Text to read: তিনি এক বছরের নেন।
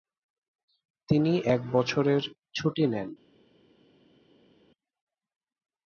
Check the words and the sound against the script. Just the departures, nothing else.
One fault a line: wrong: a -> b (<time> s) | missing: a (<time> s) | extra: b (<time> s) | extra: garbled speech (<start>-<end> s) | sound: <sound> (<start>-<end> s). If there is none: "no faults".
extra: ছুটি (2.5 s)